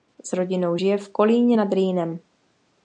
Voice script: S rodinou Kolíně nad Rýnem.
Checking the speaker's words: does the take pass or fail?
fail